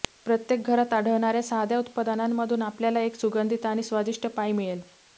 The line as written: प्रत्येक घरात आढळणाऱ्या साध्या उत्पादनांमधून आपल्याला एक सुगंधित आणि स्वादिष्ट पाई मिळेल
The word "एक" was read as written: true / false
true